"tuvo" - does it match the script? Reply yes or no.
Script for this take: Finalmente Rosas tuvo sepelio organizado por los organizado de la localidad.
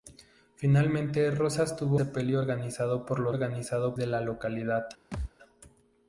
yes